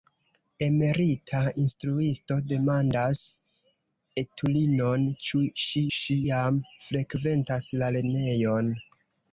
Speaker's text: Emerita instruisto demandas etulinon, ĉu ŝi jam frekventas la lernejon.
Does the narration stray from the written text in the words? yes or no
yes